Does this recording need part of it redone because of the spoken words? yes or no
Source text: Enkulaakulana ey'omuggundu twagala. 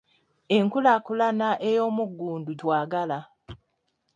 no